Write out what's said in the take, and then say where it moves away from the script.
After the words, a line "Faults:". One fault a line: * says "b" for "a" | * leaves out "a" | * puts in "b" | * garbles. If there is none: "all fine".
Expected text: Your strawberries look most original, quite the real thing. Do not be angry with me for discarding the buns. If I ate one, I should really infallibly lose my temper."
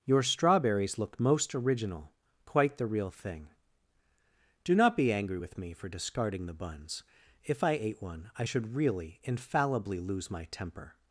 Your strawberries look most original, quite the real thing. Do not be angry with me for discarding the buns. If I ate one, I should really infallibly lose my temper."
Faults:
all fine